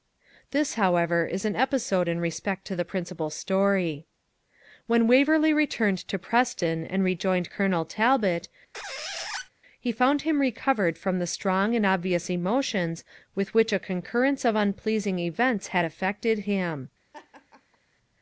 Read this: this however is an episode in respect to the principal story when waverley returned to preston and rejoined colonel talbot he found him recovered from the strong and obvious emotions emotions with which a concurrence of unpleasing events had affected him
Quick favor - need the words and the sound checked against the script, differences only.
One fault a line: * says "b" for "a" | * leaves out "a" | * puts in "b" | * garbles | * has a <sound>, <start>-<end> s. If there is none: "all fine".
* has a squeak, 8.7-9.5 s
* leaves out "emotions"
* has a laugh, 17.1-17.8 s